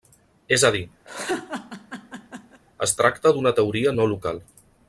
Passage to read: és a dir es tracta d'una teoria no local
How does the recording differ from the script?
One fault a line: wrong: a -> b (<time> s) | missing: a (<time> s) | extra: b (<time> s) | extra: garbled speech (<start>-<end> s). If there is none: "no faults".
no faults